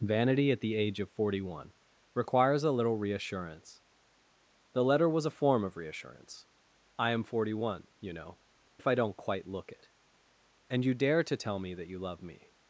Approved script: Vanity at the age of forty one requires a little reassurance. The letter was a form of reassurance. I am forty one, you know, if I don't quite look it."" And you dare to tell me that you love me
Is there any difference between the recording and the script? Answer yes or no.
no